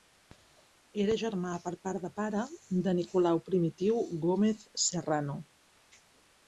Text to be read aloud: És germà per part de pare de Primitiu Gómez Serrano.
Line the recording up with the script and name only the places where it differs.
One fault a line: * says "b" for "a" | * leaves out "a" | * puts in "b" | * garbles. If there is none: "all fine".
* says "Era" for "És"
* puts in "Nicolau"